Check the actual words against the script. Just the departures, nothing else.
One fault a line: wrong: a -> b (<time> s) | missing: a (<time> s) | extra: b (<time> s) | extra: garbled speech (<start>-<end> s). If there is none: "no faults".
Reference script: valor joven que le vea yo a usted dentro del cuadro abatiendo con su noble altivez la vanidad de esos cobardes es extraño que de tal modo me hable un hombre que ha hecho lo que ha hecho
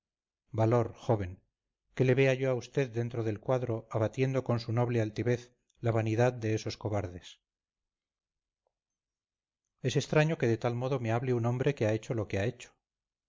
no faults